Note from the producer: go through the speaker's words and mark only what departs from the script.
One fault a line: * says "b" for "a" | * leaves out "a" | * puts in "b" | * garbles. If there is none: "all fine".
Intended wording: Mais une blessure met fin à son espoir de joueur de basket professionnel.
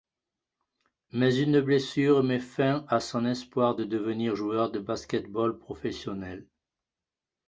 * puts in "devenir"
* puts in "ball"